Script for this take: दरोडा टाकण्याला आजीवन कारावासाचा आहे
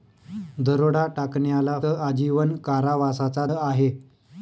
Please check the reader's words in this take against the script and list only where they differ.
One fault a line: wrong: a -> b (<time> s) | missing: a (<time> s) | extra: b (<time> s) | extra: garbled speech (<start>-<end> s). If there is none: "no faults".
no faults